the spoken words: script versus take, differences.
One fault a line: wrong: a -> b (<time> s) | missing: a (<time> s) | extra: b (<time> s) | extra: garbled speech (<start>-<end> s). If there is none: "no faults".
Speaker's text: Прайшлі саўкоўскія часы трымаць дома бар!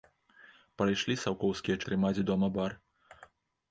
missing: часы (1.8 s)